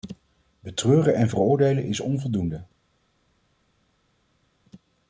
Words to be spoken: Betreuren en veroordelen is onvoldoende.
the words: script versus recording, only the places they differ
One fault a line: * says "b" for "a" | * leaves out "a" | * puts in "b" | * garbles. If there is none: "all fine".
all fine